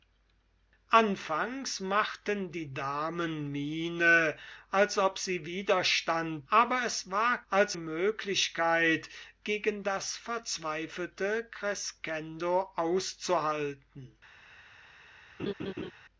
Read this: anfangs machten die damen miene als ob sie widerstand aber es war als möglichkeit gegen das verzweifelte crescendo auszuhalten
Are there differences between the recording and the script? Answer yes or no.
no